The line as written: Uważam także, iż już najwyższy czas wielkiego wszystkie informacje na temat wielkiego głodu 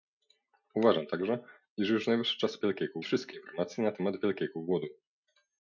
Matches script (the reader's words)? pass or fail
pass